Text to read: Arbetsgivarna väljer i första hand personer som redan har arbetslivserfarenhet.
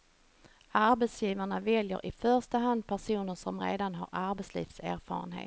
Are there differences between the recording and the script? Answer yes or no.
no